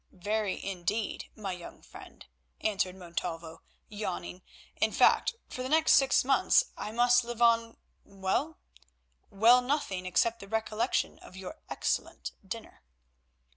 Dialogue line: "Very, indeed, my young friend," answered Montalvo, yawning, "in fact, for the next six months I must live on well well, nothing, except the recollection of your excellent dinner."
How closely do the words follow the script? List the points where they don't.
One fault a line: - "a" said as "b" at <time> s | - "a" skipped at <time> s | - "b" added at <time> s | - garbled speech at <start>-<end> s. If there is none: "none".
none